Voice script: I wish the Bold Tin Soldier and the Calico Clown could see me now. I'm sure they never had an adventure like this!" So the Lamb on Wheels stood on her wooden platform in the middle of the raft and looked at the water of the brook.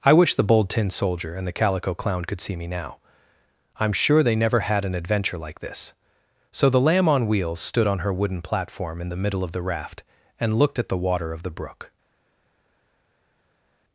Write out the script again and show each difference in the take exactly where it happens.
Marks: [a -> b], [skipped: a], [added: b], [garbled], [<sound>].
I wish the Bold Tin Soldier and the Calico Clown could see me now. I'm sure they never had an adventure like this!" So the Lamb on Wheels stood on her wooden platform in the middle of the raft and looked at the water of the brook.